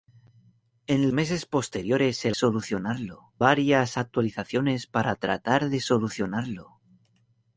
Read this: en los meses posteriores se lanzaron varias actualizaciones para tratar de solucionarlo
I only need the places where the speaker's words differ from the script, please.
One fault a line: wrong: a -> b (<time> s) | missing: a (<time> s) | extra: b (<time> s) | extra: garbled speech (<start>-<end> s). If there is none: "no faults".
missing: los (1.1 s)
wrong: lanzaron -> solucionarlo (2.3 s)